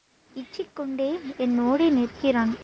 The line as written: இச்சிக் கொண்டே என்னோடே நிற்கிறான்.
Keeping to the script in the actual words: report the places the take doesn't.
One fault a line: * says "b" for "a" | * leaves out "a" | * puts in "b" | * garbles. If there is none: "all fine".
all fine